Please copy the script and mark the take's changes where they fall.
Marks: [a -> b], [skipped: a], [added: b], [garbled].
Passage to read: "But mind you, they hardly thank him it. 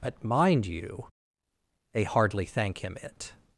"But mind you, they hardly thank him it.